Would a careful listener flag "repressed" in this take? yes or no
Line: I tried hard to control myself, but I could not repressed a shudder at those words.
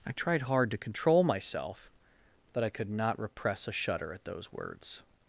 yes